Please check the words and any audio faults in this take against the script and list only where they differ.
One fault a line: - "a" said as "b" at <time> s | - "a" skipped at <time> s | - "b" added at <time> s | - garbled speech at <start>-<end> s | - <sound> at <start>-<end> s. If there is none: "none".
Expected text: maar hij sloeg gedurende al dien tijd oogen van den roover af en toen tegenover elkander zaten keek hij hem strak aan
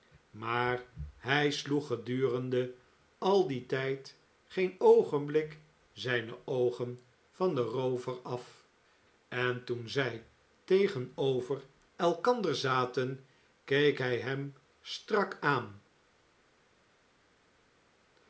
- "geen oogenblik zijne" added at 4.5 s
- "zij" added at 9.9 s